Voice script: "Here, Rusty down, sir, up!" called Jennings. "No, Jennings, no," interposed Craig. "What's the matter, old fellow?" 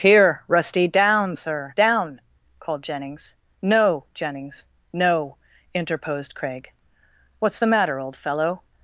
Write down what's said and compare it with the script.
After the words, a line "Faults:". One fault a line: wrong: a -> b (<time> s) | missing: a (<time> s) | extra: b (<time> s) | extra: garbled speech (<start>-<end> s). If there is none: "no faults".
"Here, Rusty down, sir, down!" called Jennings. "No, Jennings, no," interposed Craig. "What's the matter, old fellow?"
Faults:
wrong: up -> down (1.7 s)